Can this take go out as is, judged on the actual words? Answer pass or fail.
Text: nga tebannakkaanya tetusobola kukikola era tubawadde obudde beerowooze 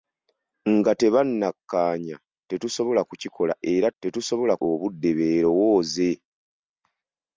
fail